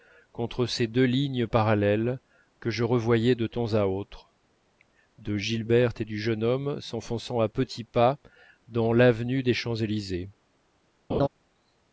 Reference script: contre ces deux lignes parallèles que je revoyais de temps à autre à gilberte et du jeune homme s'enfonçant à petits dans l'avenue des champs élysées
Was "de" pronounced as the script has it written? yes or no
yes